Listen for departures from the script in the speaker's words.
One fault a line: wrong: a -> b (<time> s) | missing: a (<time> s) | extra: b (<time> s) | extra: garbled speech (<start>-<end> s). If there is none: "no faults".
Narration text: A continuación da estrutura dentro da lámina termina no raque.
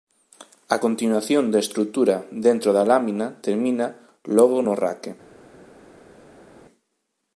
extra: logo (4.4 s)